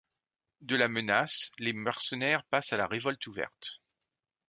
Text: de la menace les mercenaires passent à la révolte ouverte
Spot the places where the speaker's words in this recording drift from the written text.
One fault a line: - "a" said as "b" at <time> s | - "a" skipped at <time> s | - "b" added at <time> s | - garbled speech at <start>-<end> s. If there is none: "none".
none